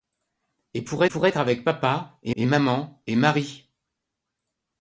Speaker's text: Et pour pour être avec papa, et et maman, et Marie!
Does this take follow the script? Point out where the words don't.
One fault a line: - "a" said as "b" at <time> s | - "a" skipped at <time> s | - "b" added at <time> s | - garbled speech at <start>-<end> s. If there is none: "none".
none